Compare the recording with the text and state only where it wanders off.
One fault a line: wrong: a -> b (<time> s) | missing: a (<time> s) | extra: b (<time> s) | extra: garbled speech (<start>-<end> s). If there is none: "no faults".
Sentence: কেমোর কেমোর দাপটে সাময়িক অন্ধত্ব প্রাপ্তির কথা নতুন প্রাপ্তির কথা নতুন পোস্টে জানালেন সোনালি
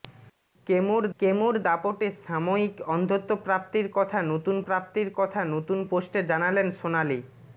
no faults